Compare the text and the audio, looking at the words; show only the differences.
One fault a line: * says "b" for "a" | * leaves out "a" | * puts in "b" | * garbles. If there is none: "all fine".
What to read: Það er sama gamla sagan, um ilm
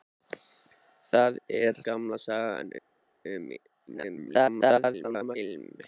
* leaves out "sama"
* garbles